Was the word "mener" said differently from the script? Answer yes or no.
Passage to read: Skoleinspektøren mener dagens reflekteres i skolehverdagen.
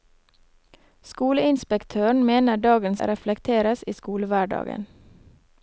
no